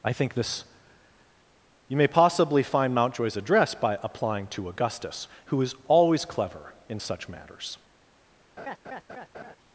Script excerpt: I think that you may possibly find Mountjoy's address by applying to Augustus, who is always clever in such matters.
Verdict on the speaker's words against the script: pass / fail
fail